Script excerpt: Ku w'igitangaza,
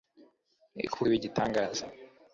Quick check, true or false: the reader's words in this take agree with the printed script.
true